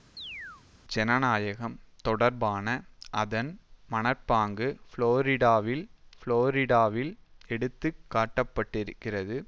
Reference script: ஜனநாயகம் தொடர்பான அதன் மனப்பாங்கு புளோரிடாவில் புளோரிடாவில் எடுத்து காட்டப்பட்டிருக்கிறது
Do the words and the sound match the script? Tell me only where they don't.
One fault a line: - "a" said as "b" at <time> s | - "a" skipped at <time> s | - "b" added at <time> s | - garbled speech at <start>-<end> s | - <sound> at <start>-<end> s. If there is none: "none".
- chirp at 0.2-0.6 s